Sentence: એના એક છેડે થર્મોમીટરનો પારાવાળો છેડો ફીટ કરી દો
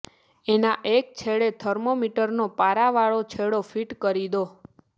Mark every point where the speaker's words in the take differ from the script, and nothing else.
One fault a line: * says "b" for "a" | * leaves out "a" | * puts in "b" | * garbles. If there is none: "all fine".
all fine